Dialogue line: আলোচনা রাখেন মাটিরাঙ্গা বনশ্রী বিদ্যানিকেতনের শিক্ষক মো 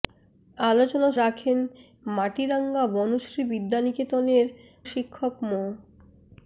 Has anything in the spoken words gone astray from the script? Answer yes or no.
no